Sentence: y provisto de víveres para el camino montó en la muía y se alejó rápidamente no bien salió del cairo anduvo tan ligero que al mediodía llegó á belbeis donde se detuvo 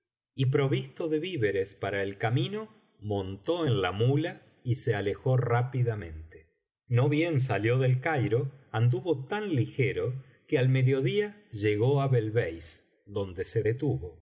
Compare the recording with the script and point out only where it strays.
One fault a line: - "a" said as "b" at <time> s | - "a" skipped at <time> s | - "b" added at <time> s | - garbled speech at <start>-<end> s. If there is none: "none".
none